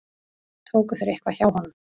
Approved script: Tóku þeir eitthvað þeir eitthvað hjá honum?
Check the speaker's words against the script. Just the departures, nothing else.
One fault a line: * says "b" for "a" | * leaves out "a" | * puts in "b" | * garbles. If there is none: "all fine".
* leaves out "þeir eitthvað"